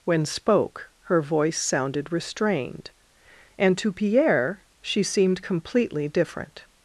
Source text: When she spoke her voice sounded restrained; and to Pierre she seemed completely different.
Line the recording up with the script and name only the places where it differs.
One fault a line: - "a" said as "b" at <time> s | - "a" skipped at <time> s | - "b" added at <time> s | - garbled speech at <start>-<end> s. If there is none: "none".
- "she" skipped at 0.2 s